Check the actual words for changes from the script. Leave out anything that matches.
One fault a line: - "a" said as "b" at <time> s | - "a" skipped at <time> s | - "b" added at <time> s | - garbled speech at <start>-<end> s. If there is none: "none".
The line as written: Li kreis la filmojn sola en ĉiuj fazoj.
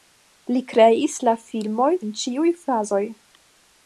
- "sola" skipped at 2.0 s